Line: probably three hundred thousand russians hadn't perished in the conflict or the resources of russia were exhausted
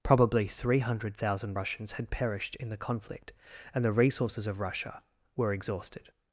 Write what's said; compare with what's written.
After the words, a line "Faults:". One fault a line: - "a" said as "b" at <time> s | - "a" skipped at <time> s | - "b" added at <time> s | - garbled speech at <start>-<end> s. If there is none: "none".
probably three hundred thousand russians had perished in the conflict and the resources of russia were exhausted
Faults:
- "hadn't" said as "had" at 2.0 s
- "or" said as "and" at 3.7 s